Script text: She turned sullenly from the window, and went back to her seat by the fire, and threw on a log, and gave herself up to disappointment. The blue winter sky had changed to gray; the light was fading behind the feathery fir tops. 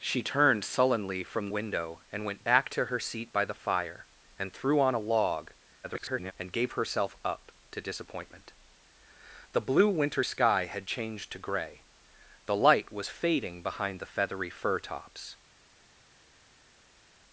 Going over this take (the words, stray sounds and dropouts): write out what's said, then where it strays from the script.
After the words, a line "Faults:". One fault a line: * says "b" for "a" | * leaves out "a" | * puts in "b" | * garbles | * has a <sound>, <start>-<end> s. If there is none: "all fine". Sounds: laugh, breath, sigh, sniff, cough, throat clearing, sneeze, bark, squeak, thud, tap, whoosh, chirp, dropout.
She turned sullenly from window, and went back to her seat by the fire, and threw on a log, [garbled] and gave herself up to disappointment. The blue winter sky had changed to gray; the light was fading behind the feathery fir tops.
Faults:
* leaves out "the"
* garbles